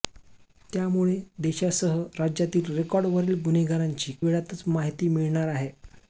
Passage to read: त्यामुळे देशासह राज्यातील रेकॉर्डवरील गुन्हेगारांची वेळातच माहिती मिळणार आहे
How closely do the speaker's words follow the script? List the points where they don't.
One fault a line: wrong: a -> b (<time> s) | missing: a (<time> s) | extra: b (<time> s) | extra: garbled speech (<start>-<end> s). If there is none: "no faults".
no faults